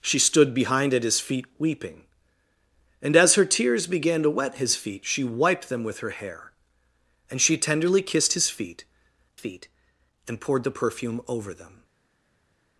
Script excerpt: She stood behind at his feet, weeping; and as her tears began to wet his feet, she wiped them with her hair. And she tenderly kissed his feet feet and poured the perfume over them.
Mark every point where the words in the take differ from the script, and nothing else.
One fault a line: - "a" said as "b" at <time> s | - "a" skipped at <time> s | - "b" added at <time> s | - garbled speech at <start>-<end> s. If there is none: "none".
none